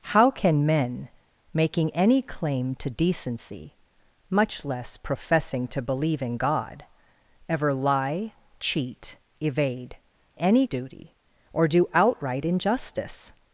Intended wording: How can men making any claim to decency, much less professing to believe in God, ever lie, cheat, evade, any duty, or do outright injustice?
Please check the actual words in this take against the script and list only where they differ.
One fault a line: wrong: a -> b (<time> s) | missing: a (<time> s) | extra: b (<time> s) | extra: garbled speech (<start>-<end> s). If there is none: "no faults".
no faults